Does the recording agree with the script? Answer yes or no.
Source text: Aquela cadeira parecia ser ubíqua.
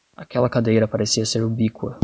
yes